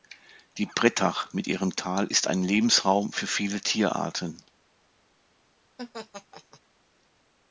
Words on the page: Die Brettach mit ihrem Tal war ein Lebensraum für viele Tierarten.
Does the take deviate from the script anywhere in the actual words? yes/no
yes